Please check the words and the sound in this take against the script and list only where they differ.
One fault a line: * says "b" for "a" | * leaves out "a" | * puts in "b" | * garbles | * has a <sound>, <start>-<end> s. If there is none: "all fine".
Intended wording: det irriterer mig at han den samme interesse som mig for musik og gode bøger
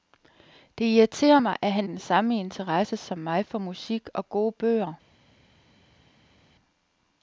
all fine